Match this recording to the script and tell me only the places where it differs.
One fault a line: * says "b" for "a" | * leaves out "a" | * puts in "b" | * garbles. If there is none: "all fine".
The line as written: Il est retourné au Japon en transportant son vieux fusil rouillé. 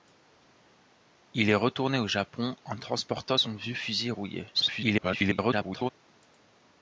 * garbles